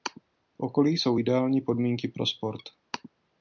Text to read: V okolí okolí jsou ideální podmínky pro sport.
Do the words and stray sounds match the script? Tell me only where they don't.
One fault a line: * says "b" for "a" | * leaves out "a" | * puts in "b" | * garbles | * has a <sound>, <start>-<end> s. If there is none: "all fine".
* leaves out "okolí"